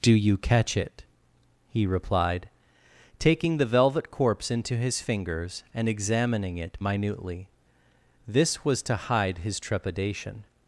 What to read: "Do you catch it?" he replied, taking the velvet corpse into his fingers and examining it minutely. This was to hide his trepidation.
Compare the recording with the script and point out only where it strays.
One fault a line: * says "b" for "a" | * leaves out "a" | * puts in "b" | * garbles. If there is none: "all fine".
all fine